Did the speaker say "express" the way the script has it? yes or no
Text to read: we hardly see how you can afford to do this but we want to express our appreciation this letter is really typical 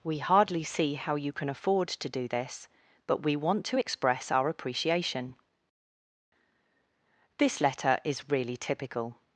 yes